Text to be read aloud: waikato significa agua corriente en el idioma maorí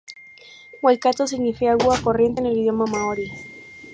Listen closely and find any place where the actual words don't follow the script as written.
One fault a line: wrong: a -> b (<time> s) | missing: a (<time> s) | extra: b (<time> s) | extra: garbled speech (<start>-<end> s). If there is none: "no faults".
no faults